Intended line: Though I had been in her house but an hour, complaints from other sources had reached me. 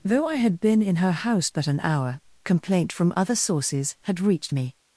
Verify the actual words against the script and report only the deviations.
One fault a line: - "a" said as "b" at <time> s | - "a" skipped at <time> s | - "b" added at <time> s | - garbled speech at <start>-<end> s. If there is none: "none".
- "complaints" said as "complaint" at 2.4 s